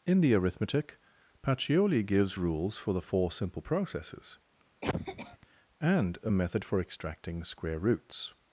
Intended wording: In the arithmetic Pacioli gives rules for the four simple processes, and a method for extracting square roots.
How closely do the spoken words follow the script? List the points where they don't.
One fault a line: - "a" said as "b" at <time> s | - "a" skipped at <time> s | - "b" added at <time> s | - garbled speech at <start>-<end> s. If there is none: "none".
none